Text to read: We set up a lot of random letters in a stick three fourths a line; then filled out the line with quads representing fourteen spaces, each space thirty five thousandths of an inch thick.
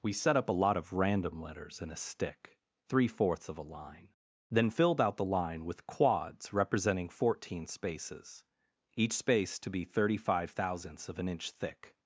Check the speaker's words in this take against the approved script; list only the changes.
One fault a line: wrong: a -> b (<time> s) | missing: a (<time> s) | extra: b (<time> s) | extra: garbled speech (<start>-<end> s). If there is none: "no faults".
extra: of (3.5 s)
extra: to be (9.6 s)